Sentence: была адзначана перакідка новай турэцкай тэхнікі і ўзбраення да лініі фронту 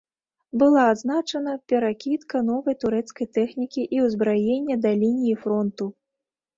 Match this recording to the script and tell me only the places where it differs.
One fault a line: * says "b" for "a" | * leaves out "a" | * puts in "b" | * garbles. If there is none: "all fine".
all fine